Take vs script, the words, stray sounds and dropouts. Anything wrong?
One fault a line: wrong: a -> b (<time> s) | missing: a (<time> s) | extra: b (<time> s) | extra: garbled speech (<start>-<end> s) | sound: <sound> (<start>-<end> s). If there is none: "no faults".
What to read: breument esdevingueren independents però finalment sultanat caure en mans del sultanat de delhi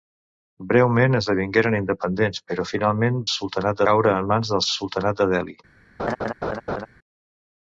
sound: laugh (6.0-6.9 s)